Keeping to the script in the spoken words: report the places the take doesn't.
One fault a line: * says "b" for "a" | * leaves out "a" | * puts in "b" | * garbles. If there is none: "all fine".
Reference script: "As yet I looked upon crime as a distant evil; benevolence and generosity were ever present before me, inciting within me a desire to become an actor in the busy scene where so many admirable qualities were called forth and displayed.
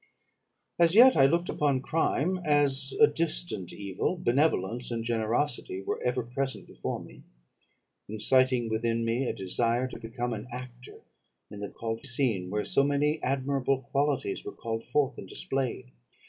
* says "called" for "busy"